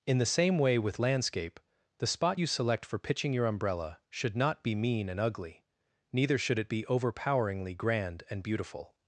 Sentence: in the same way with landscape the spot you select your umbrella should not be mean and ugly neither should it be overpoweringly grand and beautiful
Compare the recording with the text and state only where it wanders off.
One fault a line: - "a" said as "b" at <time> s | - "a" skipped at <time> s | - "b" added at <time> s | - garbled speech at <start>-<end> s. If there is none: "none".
- "for pitching" added at 2.8 s